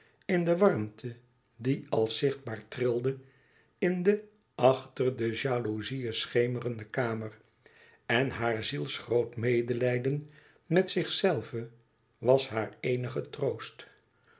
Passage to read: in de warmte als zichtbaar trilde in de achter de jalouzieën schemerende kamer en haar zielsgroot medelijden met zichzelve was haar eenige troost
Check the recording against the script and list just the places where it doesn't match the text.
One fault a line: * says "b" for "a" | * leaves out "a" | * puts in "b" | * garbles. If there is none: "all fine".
* puts in "die"